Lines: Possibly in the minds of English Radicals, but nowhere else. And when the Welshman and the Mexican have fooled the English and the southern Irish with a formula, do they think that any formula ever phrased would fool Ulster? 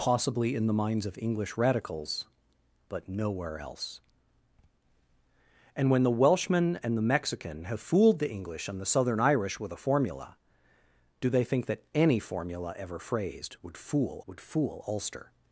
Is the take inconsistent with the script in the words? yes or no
yes